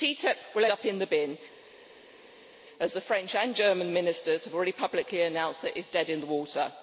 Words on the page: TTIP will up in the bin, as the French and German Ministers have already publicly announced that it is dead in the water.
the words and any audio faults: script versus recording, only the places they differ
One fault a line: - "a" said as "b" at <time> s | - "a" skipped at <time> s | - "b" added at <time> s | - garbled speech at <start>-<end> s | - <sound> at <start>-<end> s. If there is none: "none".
none